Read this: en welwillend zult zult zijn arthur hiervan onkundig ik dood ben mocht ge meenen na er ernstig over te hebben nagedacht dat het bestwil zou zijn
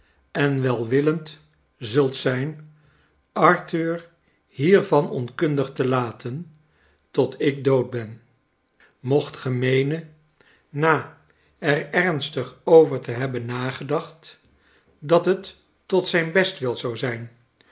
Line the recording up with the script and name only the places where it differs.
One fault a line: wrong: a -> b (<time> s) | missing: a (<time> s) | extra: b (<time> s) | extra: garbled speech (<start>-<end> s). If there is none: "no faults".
missing: zult (2.1 s)
extra: te laten tot (5.7 s)
extra: tot zijn (15.9 s)